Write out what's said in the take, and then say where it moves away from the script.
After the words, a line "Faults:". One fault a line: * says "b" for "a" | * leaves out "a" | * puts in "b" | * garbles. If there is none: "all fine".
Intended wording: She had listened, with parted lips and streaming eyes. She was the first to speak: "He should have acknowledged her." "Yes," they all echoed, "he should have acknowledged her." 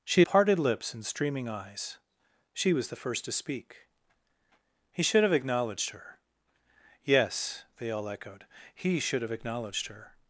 She parted lips and streaming eyes. She was the first to speak: "He should have acknowledged her." "Yes," they all echoed, "he should have acknowledged her."
Faults:
* leaves out "had listened with"